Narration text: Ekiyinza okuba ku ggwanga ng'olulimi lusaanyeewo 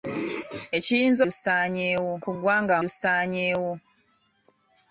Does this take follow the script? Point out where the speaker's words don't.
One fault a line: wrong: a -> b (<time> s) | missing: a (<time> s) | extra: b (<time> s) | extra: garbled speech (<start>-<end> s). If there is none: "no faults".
wrong: okuba -> lusaanyeewo (1.2 s)
missing: ng'olulimi (2.8 s)